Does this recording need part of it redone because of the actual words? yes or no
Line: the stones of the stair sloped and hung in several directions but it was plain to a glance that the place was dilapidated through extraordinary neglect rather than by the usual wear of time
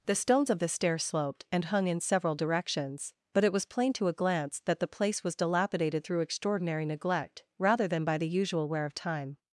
no